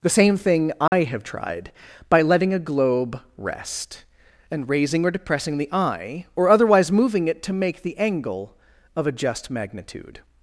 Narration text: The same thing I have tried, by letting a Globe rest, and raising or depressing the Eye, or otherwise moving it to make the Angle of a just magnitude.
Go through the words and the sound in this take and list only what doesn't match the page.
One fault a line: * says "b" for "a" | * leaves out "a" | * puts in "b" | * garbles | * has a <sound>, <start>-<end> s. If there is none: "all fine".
* has a dropout, 0.9-0.9 s